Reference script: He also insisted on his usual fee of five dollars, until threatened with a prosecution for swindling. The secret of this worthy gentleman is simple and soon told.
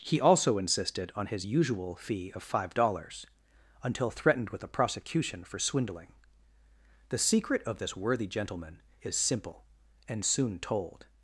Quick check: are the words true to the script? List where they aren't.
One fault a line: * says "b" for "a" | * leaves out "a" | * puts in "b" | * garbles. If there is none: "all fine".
all fine